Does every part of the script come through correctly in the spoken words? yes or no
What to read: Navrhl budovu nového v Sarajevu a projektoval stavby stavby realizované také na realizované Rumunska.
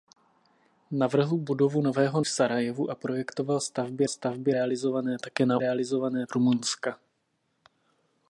yes